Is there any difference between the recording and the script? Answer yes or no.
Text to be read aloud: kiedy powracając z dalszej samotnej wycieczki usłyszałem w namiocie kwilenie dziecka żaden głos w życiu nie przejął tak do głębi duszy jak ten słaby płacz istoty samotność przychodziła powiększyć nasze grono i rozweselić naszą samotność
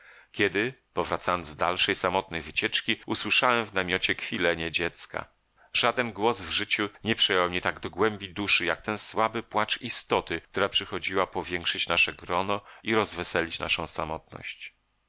yes